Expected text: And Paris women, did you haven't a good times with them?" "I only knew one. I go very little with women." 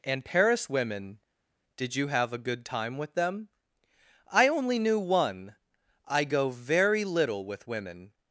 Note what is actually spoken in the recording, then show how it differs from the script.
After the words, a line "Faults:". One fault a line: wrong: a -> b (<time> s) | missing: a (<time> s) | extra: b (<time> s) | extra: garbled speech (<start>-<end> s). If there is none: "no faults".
And Paris women, did you have a good time with them?" "I only knew one. I go very little with women."
Faults:
wrong: haven't -> have (2.1 s)
wrong: times -> time (2.7 s)